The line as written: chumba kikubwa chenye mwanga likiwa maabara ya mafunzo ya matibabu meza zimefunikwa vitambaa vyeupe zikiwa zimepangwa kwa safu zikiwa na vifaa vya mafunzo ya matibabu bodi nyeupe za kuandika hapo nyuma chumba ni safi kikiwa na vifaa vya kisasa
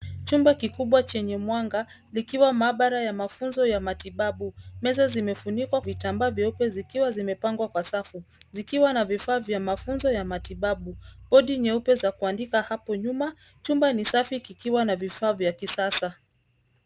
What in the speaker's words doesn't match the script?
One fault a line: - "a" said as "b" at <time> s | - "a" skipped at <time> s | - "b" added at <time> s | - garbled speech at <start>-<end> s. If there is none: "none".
none